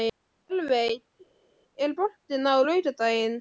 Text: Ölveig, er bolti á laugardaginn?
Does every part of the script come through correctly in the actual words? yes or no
yes